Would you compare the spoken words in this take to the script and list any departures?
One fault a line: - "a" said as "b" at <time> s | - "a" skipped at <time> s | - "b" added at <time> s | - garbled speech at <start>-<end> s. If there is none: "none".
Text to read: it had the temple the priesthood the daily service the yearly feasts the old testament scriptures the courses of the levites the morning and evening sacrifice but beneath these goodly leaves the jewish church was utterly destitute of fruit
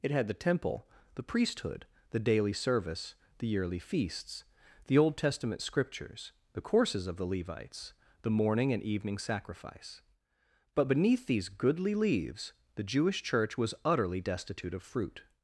none